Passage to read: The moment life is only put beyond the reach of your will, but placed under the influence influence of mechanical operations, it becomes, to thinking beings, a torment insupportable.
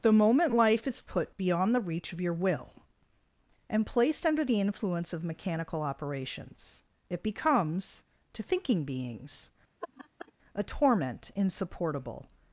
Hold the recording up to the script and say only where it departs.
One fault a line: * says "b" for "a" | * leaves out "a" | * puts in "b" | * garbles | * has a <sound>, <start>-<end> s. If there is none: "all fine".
* leaves out "only"
* says "and" for "but"
* leaves out "influence"
* has a laugh, 9.8-10.3 s